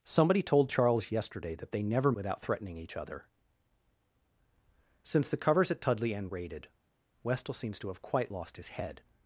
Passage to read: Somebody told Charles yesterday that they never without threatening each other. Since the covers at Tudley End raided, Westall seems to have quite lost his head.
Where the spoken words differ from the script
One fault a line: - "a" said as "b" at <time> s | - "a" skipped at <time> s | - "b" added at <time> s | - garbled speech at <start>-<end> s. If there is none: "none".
none